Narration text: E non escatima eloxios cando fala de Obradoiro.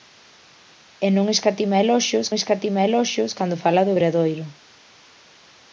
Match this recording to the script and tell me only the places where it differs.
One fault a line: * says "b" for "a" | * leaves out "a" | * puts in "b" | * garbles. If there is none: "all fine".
* puts in "escatima eloxios"